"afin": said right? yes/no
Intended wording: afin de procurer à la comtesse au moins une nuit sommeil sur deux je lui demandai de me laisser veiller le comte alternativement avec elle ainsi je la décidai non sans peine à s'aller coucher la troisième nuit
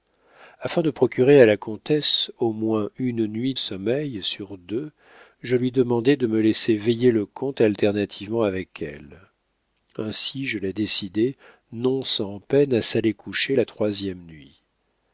yes